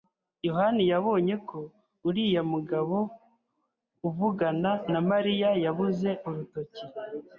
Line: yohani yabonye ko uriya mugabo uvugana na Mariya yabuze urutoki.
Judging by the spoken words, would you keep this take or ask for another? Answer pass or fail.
pass